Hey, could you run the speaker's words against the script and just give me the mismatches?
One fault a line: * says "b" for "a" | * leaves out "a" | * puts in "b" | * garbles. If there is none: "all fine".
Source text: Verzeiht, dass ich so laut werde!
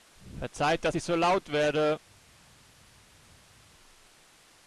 all fine